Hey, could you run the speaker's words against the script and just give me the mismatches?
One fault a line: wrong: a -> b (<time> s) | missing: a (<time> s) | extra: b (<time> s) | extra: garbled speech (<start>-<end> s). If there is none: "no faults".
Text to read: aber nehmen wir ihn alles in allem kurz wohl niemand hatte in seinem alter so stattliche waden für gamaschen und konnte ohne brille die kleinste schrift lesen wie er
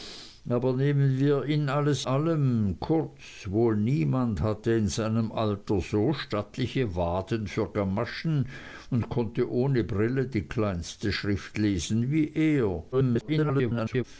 missing: in (2.1 s)
extra: garbled speech (12.9-14.0 s)